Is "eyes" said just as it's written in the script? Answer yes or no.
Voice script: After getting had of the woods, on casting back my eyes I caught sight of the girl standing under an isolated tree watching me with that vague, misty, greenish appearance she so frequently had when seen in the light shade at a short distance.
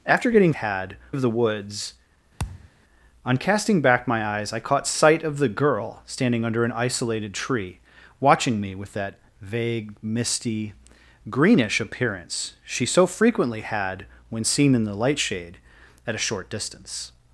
yes